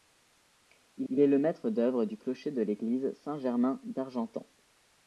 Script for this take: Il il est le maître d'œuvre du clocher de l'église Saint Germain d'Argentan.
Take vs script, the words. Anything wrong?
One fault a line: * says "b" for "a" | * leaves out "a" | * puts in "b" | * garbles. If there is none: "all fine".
all fine